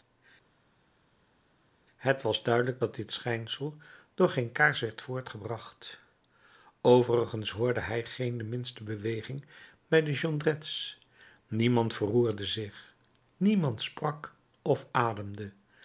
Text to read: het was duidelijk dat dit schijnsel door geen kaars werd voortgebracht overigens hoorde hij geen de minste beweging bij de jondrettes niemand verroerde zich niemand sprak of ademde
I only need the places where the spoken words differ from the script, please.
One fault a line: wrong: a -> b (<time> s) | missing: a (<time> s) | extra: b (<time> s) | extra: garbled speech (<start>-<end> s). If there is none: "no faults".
no faults